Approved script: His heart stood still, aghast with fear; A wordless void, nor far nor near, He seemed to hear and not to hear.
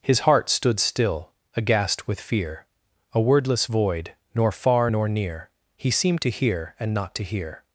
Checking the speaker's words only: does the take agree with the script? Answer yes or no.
yes